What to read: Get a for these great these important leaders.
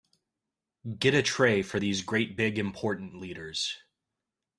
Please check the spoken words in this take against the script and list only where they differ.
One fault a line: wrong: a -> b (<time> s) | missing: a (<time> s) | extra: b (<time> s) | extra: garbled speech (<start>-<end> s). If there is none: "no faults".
extra: tray (1.2 s)
wrong: these -> big (2.4 s)